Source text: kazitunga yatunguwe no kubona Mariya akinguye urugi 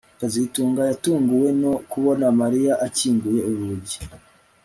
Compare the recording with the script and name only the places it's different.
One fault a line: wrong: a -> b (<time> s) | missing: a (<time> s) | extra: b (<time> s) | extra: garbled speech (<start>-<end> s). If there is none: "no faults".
no faults